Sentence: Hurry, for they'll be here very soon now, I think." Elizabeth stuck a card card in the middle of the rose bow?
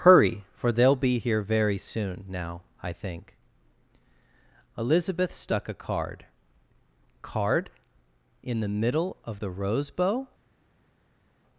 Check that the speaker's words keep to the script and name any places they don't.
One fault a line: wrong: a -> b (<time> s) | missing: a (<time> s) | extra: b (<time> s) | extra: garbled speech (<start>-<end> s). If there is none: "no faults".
no faults